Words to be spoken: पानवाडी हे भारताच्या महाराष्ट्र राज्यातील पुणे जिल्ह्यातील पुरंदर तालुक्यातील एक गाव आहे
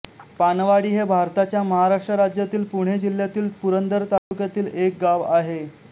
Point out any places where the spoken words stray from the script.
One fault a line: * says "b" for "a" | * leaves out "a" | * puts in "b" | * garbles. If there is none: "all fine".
all fine